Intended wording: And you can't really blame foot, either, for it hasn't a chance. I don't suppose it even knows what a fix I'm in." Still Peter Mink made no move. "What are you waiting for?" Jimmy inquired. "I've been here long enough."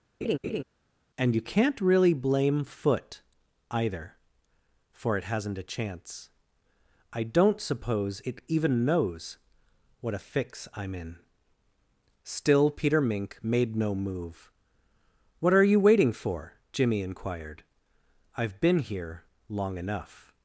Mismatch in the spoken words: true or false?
false